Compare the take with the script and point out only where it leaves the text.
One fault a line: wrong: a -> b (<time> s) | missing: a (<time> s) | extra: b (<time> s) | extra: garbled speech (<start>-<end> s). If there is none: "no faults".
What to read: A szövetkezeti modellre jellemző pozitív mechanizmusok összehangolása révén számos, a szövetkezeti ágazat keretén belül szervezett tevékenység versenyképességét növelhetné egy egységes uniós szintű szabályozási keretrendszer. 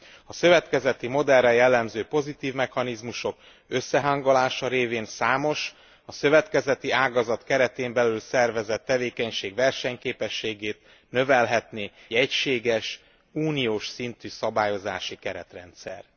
missing: egy (11.9 s)